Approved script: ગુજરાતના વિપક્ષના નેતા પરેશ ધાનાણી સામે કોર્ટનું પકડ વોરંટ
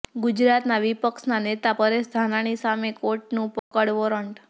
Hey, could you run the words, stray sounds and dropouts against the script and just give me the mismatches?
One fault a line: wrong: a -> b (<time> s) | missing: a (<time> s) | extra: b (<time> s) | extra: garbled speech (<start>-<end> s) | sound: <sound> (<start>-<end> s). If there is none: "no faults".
sound: dropout (3.6-3.7 s)